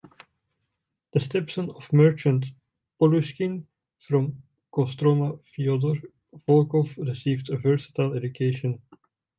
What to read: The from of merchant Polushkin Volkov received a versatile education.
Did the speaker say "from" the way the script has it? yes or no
no